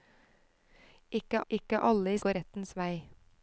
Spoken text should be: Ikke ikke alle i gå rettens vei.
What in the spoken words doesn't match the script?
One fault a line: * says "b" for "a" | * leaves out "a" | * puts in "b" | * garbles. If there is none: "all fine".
all fine